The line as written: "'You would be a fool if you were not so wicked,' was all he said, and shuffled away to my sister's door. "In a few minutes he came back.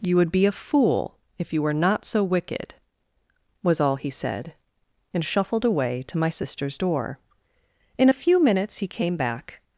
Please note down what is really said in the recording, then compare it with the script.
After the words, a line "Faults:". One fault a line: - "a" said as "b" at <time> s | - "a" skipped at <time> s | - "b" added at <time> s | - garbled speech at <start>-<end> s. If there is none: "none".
"'You would be a fool if you were not so wicked,' was all he said, and shuffled away to my sister's door. "In a few minutes he came back.
Faults:
none